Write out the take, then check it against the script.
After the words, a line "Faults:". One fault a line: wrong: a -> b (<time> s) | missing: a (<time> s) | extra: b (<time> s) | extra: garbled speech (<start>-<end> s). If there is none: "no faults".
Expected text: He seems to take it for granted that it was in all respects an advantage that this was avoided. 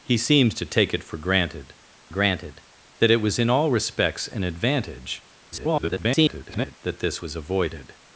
He seems to take it for granted granted that it was in all respects an advantage [garbled] that this was avoided.
Faults:
extra: granted (2.1 s)
extra: garbled speech (5.5-6.8 s)